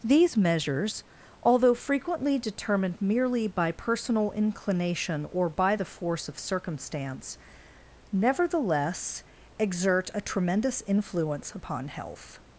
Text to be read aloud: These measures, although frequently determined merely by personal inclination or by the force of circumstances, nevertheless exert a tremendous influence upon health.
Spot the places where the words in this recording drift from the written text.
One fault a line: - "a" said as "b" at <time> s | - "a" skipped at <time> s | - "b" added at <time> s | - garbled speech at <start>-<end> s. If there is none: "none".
- "circumstances" said as "circumstance" at 6.4 s